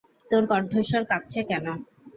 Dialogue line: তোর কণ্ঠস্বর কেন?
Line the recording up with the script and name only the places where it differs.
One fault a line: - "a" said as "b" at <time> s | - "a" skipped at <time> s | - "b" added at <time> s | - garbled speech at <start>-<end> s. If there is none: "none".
- "কাঁপছে" added at 1.1 s